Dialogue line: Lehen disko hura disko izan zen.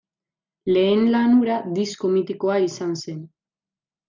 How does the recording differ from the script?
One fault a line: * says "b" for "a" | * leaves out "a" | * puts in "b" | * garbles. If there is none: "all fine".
* says "lan" for "disko"
* puts in "mitikoa"